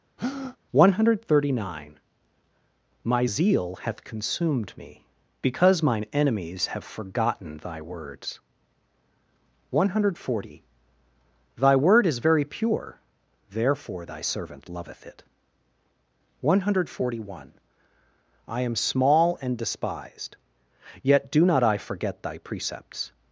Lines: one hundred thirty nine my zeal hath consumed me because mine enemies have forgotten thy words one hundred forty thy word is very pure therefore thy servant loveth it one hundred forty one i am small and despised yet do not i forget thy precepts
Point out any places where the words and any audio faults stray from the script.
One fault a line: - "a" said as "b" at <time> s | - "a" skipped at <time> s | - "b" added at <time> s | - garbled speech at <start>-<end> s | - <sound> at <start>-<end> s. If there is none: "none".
- breath at 0.2-0.6 s